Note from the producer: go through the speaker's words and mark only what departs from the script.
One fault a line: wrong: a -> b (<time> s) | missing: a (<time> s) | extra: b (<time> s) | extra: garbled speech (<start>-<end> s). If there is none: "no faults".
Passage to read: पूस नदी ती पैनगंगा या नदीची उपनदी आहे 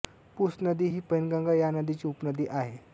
wrong: ती -> ही (0.9 s)